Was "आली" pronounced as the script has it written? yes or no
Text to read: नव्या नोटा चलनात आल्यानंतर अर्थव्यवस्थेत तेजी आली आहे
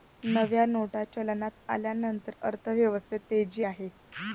no